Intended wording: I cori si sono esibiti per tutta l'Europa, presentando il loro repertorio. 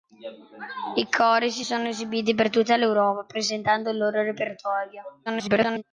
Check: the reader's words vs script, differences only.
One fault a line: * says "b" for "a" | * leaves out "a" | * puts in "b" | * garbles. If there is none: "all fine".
* garbles